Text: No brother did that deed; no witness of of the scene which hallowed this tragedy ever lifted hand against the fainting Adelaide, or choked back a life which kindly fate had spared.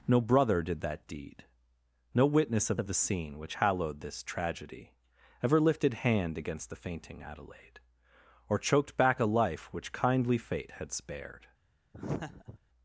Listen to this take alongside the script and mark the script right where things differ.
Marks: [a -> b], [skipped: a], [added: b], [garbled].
No brother did that deed; no witness of of the scene which hallowed this tragedy ever lifted hand against the fainting Adelaide, or choked back a life which kindly fate had spared.